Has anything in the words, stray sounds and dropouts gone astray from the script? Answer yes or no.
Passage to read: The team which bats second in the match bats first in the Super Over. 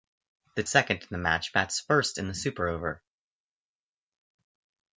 yes